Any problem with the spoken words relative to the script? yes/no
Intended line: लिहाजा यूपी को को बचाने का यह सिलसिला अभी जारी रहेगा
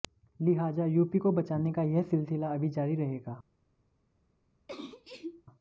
yes